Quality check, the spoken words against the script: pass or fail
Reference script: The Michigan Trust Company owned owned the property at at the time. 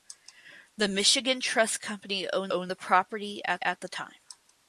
pass